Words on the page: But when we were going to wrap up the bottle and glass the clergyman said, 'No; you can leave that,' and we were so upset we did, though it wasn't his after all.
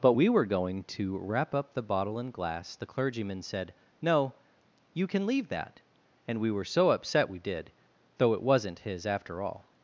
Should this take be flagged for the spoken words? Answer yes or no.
yes